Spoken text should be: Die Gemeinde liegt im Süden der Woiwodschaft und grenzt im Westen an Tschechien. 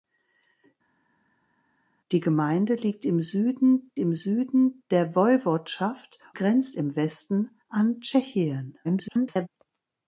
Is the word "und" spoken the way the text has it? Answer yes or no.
no